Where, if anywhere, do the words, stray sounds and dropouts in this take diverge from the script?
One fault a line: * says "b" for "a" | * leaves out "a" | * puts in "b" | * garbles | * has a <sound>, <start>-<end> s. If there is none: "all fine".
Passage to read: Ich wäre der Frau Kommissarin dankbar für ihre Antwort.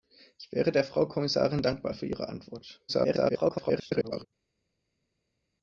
* garbles